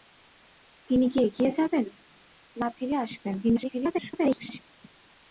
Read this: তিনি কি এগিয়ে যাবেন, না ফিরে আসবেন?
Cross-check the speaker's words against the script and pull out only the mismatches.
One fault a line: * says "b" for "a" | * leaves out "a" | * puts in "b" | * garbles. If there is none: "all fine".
* garbles